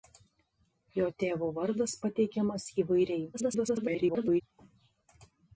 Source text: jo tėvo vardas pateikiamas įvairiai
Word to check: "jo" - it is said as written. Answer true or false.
true